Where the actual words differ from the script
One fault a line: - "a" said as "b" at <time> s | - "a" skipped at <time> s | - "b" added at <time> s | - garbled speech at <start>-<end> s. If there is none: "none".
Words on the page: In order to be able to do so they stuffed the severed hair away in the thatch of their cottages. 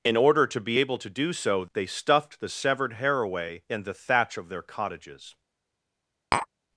none